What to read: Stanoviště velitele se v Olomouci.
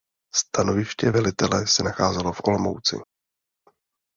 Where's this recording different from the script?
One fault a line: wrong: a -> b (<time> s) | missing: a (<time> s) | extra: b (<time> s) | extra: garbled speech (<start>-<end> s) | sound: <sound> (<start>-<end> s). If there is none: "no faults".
extra: nacházelo (1.8 s)